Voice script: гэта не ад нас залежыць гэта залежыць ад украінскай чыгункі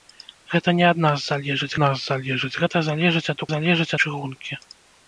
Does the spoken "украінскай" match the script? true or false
false